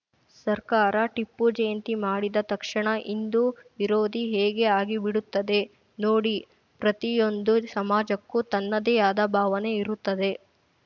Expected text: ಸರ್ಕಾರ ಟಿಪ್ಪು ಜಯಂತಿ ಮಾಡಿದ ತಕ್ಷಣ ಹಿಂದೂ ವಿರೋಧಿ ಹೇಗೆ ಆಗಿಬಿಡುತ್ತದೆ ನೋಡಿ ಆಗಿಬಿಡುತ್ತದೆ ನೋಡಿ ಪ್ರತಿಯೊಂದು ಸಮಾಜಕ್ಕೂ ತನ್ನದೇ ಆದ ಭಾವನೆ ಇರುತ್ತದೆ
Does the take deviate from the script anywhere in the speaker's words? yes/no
yes